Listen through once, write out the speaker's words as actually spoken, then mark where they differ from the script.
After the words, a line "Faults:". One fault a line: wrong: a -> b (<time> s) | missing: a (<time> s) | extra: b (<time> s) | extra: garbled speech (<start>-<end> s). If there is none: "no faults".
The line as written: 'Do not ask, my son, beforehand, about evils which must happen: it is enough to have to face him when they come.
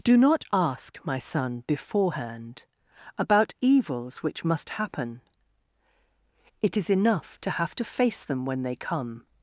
'Do not ask, my son, beforehand, about evils which must happen: it is enough to have to face them when they come.
Faults:
wrong: him -> them (8.2 s)